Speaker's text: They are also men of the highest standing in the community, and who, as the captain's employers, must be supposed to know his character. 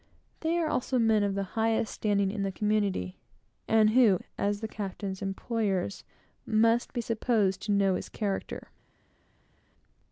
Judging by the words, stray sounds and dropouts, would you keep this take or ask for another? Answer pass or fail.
pass